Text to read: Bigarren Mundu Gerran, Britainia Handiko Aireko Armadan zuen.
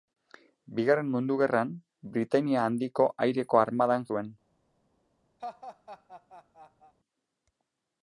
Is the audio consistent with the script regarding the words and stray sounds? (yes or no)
no